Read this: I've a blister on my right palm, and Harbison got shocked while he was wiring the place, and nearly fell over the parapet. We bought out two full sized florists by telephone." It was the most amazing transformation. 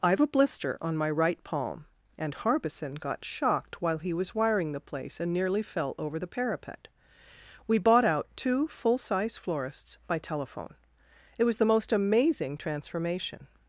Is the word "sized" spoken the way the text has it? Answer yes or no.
no